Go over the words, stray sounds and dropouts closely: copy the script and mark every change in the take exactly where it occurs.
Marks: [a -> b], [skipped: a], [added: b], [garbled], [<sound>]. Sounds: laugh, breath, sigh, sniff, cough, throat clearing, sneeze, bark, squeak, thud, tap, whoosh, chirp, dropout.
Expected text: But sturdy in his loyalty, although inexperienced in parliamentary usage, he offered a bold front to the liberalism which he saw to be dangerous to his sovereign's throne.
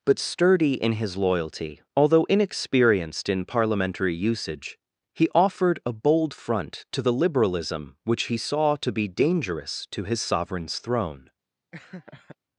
But sturdy in his loyalty, although inexperienced in parliamentary usage, he offered a bold front to the liberalism which he saw to be dangerous to his sovereign's throne. [laugh]